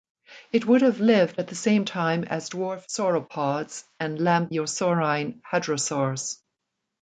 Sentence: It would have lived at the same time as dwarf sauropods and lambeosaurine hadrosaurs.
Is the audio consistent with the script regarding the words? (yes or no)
yes